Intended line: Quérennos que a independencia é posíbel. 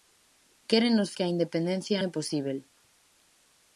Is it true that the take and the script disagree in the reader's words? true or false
false